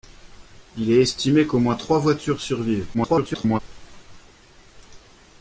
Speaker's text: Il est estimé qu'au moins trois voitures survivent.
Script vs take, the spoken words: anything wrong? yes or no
yes